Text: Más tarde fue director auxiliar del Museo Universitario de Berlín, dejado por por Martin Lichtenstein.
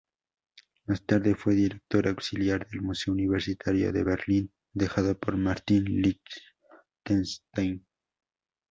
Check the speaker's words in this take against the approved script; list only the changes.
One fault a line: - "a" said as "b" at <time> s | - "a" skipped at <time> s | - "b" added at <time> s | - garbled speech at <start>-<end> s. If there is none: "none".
- "por" skipped at 5.4 s